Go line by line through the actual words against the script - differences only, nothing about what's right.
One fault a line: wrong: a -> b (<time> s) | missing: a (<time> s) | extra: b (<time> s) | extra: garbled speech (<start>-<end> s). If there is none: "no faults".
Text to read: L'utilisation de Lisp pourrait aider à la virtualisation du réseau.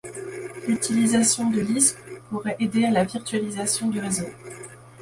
no faults